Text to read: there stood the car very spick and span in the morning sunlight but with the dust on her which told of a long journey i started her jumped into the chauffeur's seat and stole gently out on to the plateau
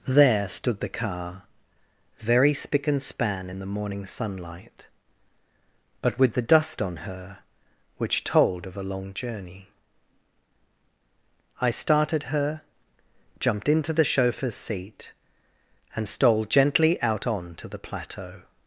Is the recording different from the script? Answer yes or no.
no